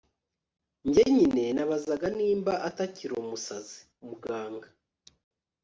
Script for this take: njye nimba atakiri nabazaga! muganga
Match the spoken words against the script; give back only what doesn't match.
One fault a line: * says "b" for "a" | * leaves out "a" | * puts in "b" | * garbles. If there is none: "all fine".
* puts in "nyine nabazaga"
* says "umusazi" for "nabazaga"